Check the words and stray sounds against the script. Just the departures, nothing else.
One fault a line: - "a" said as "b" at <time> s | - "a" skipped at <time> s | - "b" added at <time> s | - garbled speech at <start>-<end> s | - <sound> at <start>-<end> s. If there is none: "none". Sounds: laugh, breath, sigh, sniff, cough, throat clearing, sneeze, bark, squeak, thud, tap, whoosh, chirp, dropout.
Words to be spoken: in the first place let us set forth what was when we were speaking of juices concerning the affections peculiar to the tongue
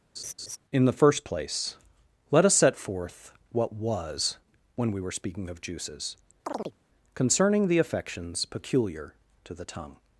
- laugh at 0.2-0.6 s
- chirp at 6.4-6.8 s